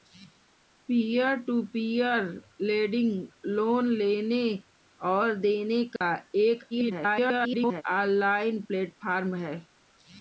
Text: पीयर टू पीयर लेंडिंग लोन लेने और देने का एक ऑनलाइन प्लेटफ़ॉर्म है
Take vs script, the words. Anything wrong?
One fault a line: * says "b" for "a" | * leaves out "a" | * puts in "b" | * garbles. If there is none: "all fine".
* garbles